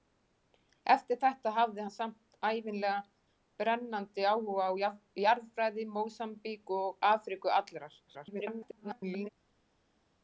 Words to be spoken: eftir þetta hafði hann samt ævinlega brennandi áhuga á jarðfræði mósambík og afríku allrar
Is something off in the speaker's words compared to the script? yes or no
yes